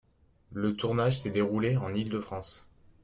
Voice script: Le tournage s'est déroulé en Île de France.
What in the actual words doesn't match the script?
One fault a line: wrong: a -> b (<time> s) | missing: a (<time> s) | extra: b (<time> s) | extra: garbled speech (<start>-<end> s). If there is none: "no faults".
no faults